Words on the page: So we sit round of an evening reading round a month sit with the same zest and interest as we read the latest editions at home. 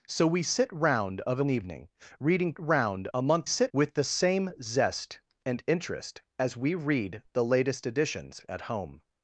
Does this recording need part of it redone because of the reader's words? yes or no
no